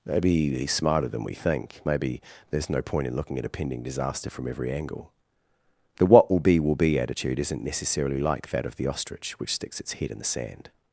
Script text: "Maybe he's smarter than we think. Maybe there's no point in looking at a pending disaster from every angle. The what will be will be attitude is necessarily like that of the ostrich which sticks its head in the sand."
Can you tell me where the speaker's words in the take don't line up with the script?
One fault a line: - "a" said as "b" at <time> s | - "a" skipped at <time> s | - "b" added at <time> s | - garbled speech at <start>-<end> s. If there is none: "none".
- "is" said as "isn't" at 7.4 s